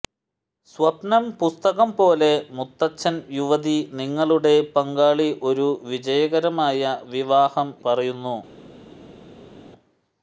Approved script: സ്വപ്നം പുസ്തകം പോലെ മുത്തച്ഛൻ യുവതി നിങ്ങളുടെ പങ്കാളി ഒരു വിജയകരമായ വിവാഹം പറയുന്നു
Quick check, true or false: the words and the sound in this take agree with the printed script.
true